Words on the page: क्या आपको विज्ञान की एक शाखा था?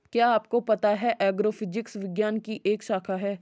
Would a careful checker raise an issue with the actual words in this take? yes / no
yes